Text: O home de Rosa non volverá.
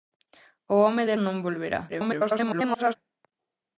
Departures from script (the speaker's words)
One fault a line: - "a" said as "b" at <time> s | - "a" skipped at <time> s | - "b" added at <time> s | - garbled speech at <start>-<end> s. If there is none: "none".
- "Rosa" skipped at 1.2 s
- garbled speech at 1.9-3.0 s